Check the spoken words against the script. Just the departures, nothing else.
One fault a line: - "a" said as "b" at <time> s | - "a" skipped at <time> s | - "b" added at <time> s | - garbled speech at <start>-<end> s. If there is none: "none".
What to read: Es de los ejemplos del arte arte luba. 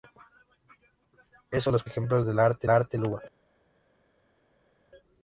none